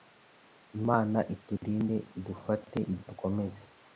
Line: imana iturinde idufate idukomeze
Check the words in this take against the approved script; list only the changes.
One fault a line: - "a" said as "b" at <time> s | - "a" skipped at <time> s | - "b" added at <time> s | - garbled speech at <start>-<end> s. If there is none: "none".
none